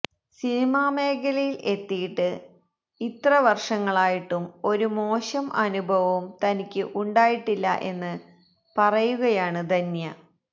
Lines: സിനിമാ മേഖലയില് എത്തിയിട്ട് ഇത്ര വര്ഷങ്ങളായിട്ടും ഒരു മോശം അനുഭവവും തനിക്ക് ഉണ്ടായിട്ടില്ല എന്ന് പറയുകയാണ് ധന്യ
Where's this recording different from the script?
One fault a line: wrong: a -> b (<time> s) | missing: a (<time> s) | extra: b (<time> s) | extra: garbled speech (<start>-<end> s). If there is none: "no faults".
no faults